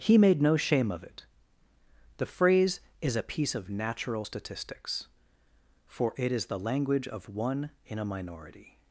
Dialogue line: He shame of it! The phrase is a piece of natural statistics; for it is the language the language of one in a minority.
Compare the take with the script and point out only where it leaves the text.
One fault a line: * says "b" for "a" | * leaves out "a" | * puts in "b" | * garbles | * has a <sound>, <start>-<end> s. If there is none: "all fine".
* puts in "made no"
* leaves out "the language"